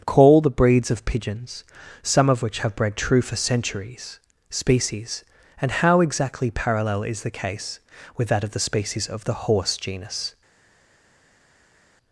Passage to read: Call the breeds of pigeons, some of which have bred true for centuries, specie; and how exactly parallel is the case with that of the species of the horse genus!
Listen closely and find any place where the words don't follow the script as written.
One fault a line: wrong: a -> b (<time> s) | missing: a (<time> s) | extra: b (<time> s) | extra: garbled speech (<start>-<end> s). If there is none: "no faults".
wrong: specie -> species (4.5 s)